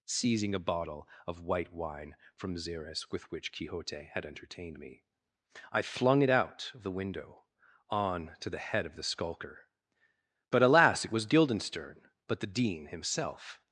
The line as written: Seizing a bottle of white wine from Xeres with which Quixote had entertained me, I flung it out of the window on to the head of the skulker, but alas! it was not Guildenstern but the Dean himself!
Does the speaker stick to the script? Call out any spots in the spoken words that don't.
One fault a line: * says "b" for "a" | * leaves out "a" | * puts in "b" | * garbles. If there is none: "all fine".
* leaves out "not"